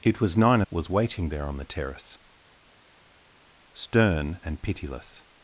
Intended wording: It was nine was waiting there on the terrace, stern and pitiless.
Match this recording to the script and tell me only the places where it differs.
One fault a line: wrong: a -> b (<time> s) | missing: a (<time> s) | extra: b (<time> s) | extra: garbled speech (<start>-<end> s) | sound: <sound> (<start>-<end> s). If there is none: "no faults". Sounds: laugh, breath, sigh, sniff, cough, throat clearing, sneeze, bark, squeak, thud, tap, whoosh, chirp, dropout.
no faults